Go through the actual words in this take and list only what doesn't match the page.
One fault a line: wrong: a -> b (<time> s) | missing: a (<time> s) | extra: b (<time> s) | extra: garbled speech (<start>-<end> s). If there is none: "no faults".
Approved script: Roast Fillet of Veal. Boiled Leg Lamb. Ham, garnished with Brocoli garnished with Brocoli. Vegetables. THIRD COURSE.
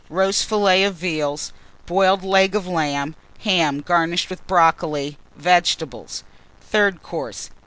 extra: of (2.6 s)
missing: garnished with Brocoli (5.2 s)